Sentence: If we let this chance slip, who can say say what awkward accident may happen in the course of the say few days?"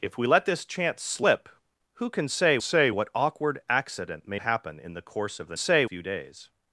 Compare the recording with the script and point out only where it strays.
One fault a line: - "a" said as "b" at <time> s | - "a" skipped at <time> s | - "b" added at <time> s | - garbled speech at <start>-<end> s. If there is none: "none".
none